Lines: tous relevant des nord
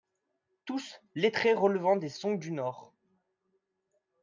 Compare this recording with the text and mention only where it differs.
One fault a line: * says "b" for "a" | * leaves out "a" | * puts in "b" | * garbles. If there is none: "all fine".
* puts in "lettrés"
* puts in "song du"